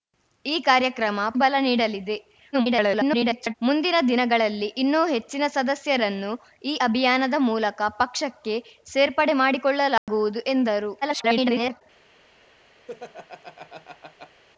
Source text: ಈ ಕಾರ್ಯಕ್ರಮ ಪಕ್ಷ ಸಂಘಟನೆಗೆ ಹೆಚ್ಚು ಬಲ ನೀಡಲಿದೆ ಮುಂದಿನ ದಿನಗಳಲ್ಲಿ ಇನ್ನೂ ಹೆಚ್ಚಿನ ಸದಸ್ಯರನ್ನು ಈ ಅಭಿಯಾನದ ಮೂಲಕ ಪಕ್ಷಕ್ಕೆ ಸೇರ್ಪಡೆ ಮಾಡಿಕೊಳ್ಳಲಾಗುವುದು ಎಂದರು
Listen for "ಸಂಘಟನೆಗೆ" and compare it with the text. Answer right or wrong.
wrong